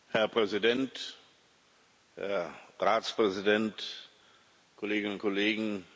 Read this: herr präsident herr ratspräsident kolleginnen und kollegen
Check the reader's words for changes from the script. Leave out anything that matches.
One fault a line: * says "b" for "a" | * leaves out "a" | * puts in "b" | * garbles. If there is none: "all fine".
all fine